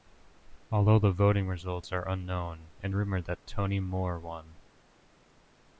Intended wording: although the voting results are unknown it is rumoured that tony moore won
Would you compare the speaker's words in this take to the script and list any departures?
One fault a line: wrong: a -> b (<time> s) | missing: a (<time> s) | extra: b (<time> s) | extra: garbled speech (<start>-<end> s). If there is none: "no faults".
missing: is (3.0 s)